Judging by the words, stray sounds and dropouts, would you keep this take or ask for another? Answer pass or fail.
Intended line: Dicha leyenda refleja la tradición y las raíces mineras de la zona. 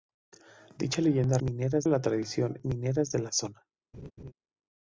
fail